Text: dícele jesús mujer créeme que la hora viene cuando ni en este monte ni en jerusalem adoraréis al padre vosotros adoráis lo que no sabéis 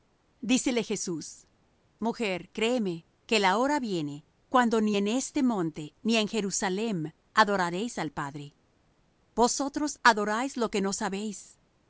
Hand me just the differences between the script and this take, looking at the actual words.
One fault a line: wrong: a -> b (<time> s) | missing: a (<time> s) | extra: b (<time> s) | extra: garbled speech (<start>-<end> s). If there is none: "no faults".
no faults